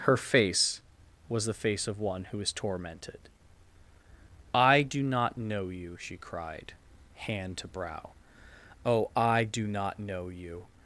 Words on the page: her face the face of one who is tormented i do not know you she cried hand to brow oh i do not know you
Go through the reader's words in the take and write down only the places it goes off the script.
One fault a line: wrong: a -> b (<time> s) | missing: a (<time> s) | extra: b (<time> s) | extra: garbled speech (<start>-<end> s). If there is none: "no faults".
extra: was (1.3 s)